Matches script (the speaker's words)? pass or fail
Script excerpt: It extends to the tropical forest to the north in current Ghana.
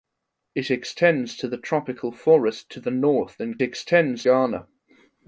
fail